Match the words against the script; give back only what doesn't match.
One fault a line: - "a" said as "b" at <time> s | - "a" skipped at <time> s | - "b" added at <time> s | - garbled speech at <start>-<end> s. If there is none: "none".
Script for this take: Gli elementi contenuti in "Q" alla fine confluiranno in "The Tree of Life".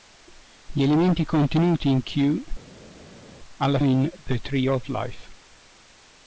- "fine confluiranno" skipped at 3.8 s